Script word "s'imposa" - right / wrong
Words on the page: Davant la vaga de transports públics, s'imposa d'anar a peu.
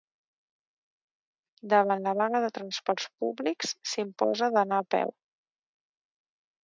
right